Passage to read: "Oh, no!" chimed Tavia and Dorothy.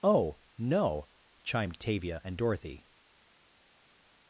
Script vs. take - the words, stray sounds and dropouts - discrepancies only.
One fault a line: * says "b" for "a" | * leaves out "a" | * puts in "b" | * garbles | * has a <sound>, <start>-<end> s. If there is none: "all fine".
all fine